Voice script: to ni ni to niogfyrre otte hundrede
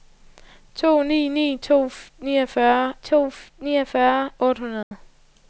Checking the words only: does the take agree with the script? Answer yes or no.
no